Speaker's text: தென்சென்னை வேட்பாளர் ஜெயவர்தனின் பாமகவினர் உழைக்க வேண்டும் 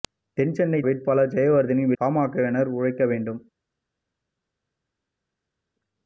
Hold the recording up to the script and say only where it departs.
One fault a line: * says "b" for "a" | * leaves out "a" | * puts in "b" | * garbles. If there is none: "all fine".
all fine